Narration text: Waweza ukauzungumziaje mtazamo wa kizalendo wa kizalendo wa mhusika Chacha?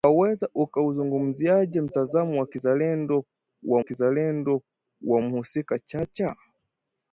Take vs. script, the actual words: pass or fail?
pass